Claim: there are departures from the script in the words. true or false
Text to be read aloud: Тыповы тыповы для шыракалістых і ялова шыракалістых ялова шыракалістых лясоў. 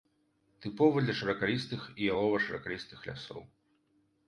true